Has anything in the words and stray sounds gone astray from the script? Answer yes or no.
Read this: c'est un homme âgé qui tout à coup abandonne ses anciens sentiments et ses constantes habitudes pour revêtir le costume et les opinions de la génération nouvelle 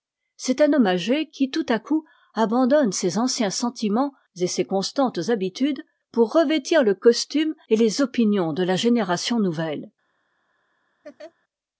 yes